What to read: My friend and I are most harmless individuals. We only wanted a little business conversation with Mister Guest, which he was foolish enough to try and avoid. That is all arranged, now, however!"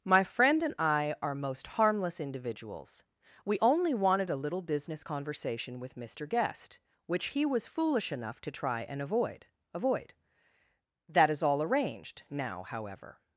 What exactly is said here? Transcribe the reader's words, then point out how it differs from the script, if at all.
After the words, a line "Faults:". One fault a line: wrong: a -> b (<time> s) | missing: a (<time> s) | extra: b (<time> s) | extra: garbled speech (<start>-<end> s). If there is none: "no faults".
My friend and I are most harmless individuals. We only wanted a little business conversation with Mister Guest, which he was foolish enough to try and avoid avoid. That is all arranged, now, however!"
Faults:
extra: avoid (9.7 s)